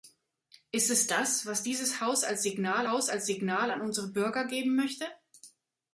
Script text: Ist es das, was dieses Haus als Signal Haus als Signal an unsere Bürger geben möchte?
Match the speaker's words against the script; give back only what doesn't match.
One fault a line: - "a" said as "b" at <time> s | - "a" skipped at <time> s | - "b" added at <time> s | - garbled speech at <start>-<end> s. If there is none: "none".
none